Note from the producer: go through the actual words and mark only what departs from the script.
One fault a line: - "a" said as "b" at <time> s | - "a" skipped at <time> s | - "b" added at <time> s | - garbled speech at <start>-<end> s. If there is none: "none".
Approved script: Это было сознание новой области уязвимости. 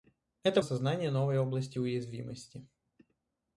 - "было" skipped at 0.6 s